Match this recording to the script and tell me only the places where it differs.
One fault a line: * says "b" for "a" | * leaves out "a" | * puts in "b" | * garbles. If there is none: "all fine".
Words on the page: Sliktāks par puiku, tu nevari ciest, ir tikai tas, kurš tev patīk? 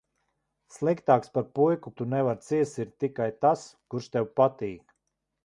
all fine